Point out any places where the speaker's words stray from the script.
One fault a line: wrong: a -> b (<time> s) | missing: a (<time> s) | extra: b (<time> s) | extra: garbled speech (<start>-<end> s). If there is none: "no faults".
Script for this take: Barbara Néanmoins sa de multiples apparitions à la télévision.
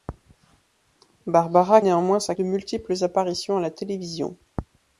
no faults